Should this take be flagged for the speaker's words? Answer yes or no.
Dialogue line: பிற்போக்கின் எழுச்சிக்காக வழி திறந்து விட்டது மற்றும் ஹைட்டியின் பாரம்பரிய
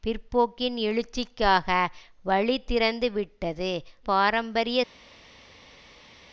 yes